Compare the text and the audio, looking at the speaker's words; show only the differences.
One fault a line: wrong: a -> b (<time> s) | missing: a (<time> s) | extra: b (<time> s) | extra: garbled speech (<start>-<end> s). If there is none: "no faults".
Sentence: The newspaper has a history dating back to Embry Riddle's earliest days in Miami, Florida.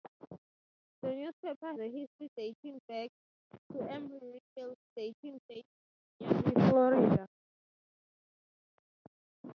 missing: has (1.7 s)
wrong: earliest -> dating (5.0 s)